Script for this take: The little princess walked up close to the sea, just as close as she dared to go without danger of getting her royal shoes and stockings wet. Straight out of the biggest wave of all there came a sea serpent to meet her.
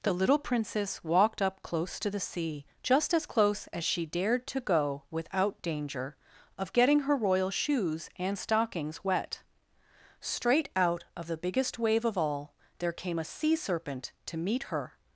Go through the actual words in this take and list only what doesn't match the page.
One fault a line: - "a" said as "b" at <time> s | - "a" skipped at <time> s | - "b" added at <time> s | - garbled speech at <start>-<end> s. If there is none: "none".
none